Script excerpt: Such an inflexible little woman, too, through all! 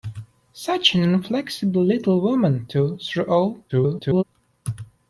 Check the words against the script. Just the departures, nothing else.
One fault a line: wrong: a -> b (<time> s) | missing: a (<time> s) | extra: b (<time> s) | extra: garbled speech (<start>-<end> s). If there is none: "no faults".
extra: garbled speech (3.7-4.2 s)